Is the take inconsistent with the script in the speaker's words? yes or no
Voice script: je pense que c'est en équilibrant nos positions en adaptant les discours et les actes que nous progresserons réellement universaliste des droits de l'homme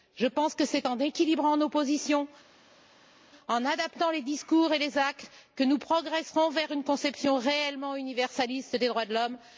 yes